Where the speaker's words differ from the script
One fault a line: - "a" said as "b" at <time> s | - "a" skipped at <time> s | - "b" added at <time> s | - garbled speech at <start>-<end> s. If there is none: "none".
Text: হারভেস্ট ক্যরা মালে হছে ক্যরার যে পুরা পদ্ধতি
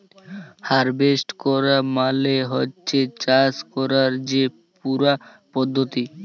- "চাষ" added at 3.2 s